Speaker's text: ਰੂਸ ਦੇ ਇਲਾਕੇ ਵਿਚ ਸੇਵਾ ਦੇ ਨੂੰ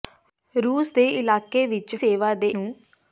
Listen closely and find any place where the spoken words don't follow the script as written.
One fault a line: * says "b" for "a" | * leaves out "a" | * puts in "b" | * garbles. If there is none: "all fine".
all fine